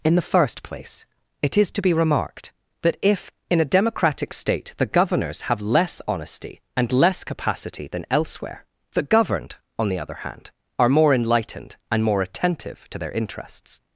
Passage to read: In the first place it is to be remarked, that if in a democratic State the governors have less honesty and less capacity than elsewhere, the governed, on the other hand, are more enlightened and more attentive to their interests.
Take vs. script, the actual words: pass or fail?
pass